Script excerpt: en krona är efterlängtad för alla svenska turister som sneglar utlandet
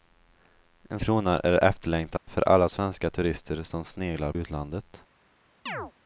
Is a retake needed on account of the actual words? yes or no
no